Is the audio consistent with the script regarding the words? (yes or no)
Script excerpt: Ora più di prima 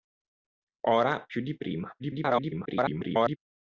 no